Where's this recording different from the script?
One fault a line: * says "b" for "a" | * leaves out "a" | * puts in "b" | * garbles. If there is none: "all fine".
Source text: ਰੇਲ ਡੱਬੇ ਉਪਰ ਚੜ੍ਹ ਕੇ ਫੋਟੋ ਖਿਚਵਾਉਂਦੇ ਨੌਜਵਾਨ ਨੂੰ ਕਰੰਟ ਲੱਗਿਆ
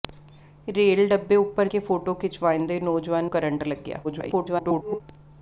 * leaves out "ਚੜ੍ਹ"
* leaves out "ਨੂੰ"
* garbles